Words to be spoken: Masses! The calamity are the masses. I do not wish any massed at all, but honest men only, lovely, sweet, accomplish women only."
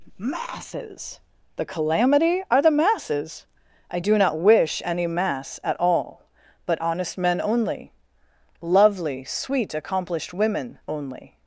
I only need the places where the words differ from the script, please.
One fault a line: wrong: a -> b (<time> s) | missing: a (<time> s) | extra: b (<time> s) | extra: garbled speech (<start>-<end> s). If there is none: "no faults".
wrong: massed -> mass (5.1 s)
wrong: accomplish -> accomplished (9.7 s)